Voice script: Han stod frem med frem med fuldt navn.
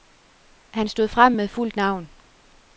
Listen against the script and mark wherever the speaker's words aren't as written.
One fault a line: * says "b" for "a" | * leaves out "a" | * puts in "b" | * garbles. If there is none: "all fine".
* leaves out "frem med"